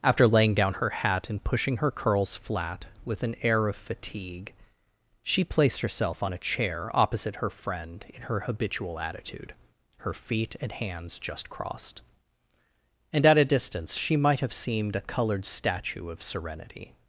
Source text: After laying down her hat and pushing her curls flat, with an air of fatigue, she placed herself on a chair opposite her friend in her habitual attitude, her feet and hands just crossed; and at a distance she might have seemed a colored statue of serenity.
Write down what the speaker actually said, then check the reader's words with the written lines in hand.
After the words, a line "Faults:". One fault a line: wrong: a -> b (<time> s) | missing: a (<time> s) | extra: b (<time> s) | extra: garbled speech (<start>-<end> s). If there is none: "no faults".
After laying down her hat and pushing her curls flat, with an air of fatigue, she placed herself on a chair opposite her friend in her habitual attitude, her feet and hands just crossed; and at a distance she might have seemed a colored statue of serenity.
Faults:
no faults